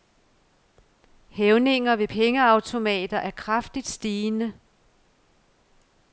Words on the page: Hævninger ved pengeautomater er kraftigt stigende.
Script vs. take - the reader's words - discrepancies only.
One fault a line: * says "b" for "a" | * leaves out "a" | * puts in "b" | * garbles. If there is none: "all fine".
all fine